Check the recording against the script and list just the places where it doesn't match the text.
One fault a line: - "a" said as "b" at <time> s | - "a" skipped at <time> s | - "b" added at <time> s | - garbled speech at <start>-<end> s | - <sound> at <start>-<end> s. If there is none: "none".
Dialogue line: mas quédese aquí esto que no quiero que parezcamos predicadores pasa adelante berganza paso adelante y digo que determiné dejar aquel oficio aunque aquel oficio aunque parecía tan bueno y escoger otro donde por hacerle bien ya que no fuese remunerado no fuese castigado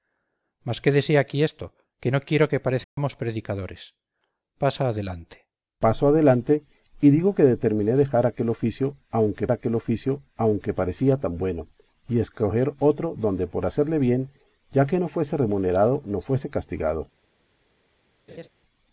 - dropout at 2.8-3.0 s
- laugh at 18.3-18.5 s